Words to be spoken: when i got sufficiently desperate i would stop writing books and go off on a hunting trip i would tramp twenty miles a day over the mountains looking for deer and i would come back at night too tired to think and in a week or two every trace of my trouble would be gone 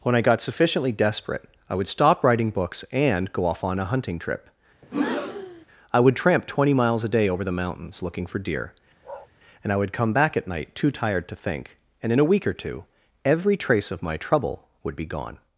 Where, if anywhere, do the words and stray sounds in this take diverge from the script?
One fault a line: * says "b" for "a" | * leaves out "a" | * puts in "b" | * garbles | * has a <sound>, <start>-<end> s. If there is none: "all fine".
* has a breath, 4.8-5.7 s
* has a bark, 9.0-9.3 s